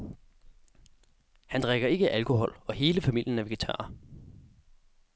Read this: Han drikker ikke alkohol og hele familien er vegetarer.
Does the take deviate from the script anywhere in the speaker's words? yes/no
no